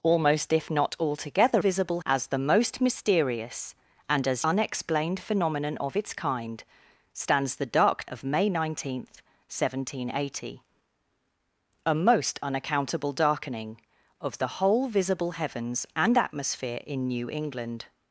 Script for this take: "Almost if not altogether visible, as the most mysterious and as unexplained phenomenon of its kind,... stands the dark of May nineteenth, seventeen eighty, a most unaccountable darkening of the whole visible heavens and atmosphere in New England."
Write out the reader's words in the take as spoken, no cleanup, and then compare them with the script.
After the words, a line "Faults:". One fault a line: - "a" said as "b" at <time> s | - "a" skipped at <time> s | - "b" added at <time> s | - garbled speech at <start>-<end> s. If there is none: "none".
"Almost if not altogether visible, as the most mysterious and as unexplained phenomenon of its kind,... stands the dark of May nineteenth, seventeen eighty, a most unaccountable darkening of the whole visible heavens and atmosphere in New England."
Faults:
none